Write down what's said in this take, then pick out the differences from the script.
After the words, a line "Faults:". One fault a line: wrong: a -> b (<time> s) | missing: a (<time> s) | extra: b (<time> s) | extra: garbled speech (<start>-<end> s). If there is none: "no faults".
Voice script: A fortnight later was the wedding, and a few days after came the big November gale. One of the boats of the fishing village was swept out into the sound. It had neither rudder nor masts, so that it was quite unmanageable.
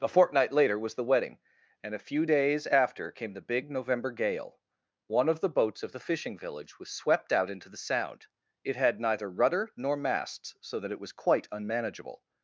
A fortnight later was the wedding, and a few days after came the big November gale. One of the boats of the fishing village was swept out into the sound. It had neither rudder nor masts, so that it was quite unmanageable.
Faults:
no faults